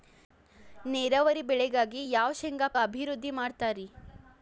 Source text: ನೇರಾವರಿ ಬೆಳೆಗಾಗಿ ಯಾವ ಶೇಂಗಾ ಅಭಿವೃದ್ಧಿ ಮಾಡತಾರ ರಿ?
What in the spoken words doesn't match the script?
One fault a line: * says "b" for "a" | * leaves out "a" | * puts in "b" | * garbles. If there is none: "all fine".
all fine